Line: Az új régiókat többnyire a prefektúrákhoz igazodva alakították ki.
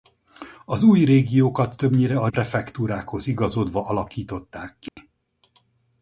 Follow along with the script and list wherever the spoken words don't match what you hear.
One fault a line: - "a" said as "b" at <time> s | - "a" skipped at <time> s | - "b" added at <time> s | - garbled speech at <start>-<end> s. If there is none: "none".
none